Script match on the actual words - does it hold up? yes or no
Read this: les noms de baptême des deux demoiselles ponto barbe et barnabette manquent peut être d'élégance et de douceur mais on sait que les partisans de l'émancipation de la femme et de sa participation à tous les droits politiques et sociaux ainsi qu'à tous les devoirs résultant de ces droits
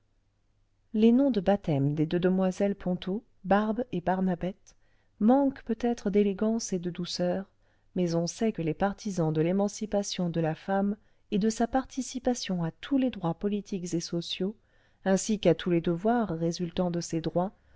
yes